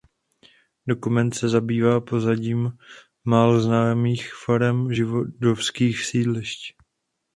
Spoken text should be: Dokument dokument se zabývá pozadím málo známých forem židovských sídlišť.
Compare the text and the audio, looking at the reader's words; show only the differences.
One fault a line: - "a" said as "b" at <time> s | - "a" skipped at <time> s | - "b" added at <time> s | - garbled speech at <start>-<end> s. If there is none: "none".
- "dokument" skipped at 1.3 s